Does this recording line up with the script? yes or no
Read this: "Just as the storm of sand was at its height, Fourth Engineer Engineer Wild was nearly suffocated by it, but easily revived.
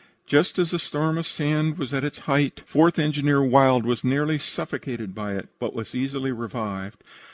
no